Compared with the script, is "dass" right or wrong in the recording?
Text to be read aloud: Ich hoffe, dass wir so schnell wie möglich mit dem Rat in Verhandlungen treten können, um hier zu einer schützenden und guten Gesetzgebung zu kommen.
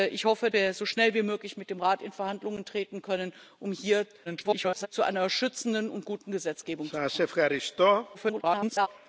wrong